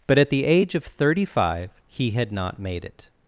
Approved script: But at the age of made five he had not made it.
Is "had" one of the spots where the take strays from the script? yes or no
no